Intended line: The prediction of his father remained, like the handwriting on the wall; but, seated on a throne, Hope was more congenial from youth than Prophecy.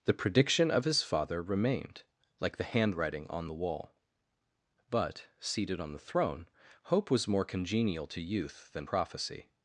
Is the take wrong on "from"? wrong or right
wrong